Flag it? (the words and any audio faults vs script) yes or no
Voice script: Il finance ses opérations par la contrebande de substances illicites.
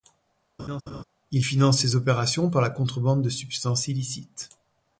yes